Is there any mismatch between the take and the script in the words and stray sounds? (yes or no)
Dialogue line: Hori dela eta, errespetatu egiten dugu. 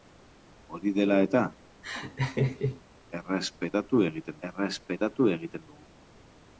yes